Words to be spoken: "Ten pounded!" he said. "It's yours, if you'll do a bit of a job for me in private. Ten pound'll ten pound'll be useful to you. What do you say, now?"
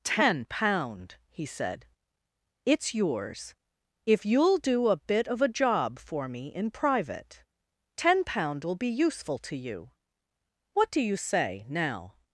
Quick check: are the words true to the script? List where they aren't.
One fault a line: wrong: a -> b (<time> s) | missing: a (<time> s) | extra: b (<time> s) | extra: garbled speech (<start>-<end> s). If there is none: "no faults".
wrong: pounded -> pound (0.5 s)
missing: ten pound'll (8.8 s)